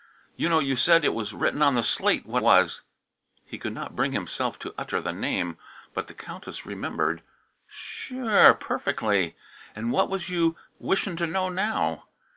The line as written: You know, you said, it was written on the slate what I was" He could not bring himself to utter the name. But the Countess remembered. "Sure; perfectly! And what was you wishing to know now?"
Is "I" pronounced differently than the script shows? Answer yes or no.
yes